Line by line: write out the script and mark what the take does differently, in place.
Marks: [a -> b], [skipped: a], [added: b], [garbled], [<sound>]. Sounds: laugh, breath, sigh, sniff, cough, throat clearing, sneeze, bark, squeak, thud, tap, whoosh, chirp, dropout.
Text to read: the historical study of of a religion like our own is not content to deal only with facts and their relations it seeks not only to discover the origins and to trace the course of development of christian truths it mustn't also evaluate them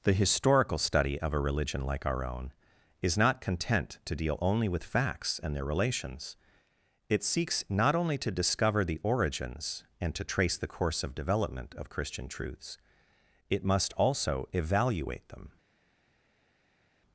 the historical study of [skipped: of] a religion like our own is not content to deal only with facts and their relations it seeks not only to discover the origins and to trace the course of development of christian truths it [mustn't -> must] also evaluate them